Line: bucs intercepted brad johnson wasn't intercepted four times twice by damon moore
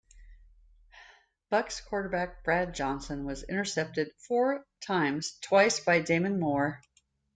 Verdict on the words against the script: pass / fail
fail